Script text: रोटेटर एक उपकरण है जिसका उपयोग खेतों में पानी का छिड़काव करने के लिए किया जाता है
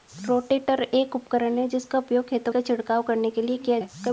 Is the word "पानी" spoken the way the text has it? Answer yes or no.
no